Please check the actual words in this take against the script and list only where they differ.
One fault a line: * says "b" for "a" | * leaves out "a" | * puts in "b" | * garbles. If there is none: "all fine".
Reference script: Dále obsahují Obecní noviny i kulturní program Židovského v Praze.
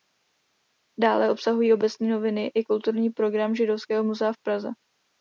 * puts in "muzea"